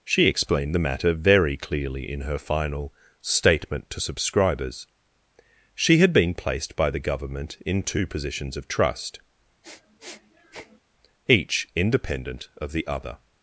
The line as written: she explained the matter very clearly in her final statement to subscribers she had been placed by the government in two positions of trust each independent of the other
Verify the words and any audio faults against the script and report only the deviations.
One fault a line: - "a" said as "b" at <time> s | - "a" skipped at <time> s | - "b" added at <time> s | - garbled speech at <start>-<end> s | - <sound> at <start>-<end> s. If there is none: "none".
- sniff at 9.6-10.8 s